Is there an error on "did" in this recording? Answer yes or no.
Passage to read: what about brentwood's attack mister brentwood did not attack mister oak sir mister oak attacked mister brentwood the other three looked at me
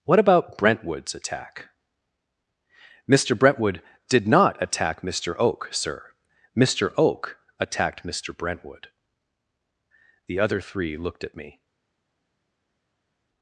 no